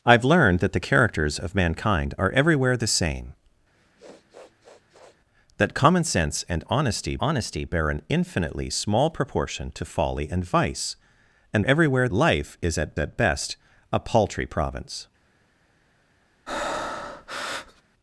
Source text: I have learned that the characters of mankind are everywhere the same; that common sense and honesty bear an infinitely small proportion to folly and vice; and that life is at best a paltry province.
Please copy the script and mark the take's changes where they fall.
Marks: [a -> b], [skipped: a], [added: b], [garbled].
I have learned that the characters of mankind are everywhere the same; that common sense and honesty [added: honesty] bear an infinitely small proportion to folly and vice; and [that -> everywhere] life is at [added: at] best a paltry province.